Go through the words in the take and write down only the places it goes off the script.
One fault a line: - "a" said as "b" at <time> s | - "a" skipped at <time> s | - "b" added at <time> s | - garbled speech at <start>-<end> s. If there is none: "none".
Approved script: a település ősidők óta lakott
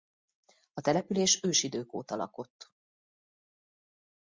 none